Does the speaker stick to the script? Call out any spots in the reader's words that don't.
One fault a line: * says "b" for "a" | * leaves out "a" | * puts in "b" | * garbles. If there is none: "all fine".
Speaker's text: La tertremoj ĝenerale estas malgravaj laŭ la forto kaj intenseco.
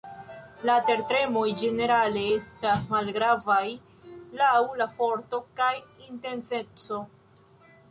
all fine